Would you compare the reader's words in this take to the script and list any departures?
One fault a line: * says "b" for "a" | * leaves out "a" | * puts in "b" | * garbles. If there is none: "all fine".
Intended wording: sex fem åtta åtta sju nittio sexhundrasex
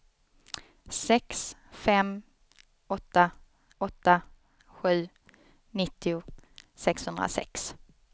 all fine